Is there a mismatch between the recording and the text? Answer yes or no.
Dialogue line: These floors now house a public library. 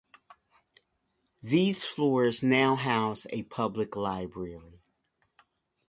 no